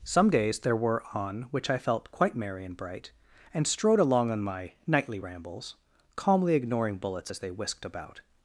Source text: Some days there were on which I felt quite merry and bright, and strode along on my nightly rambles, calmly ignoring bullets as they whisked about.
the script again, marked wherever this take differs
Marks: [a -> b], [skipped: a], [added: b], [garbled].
Some days there were on which I felt quite merry and bright, and strode along on my nightly rambles, calmly ignoring bullets as they whisked about.